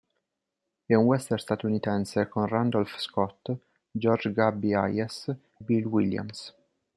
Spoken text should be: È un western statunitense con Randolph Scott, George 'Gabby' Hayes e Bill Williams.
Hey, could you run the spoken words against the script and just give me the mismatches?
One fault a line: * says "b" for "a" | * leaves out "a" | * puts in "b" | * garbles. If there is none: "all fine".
* leaves out "e"